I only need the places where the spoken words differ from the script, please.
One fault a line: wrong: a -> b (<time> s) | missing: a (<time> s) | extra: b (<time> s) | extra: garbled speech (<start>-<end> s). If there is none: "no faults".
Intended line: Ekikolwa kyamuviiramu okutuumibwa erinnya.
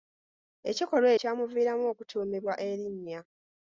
no faults